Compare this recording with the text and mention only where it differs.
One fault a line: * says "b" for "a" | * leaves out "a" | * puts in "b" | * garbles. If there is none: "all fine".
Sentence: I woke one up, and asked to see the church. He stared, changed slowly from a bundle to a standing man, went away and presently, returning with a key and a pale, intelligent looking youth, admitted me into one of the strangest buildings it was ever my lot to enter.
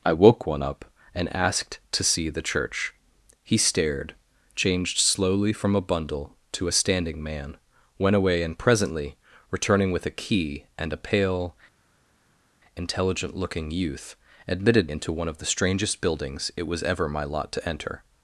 * leaves out "me"